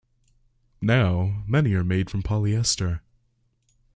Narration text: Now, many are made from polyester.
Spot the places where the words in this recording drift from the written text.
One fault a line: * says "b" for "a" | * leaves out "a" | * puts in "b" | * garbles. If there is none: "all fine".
all fine